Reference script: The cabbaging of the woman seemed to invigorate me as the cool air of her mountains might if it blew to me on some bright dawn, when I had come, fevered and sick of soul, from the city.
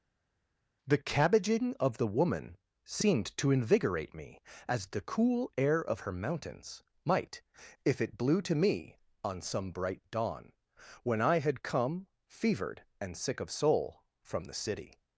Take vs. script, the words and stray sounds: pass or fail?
pass